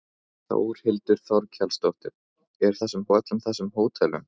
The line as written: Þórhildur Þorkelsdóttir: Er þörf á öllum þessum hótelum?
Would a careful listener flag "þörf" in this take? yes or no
yes